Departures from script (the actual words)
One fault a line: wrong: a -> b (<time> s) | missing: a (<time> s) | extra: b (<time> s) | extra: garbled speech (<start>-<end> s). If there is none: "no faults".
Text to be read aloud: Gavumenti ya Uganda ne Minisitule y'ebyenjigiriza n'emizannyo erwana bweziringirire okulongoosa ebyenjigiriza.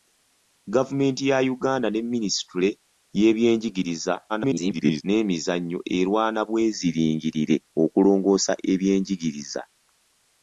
extra: garbled speech (4.3-5.0 s)